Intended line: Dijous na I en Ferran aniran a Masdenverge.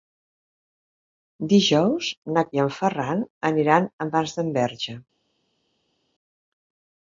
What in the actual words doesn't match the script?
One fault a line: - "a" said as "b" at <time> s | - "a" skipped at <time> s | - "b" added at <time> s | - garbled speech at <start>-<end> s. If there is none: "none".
none